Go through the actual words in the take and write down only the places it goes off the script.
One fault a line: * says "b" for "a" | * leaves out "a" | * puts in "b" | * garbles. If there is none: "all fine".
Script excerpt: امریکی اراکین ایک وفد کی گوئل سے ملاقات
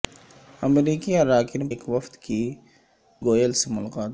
all fine